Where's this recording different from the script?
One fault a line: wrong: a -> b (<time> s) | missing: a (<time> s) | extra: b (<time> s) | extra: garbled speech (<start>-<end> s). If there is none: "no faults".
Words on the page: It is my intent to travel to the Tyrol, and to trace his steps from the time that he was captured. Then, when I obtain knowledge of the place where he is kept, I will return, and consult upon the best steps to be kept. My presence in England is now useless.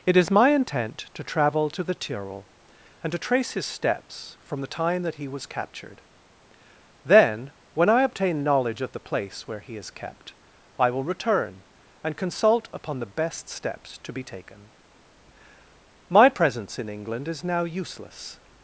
wrong: kept -> taken (14.2 s)